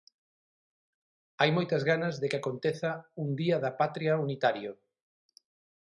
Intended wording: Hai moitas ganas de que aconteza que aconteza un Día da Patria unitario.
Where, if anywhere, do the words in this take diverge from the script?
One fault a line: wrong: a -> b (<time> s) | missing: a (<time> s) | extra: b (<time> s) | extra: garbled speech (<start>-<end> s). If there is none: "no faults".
missing: que aconteza (2.9 s)